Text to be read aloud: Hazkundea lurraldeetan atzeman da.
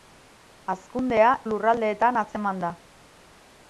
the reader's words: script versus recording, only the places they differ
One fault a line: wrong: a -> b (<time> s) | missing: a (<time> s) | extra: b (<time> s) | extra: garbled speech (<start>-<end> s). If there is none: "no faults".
no faults